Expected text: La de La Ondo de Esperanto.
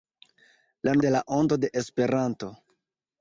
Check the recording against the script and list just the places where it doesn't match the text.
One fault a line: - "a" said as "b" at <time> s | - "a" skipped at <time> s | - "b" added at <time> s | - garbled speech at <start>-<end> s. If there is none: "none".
none